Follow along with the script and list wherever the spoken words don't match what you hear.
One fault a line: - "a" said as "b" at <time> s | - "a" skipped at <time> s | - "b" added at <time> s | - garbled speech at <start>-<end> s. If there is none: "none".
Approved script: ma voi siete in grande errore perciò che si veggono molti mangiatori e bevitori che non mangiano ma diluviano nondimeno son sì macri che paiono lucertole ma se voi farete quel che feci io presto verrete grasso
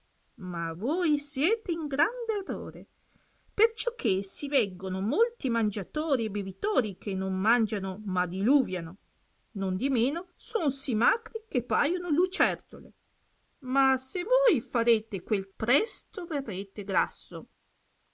- "che feci io" skipped at 15.5 s